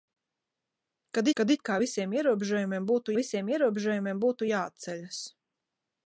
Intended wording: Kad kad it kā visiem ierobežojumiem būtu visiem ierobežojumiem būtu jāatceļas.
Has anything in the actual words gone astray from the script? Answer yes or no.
no